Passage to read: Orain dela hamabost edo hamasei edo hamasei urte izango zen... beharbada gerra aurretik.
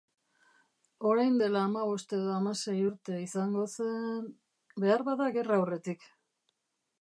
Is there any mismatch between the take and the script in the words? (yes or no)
yes